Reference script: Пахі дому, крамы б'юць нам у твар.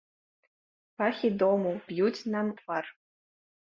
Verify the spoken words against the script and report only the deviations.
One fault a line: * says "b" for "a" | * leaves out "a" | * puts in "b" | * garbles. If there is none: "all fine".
* leaves out "крамы"
* leaves out "у"